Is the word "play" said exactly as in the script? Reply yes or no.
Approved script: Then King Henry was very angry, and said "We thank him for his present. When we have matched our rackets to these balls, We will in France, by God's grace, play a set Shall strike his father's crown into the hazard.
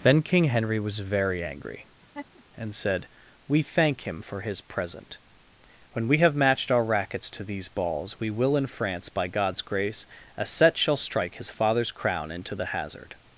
no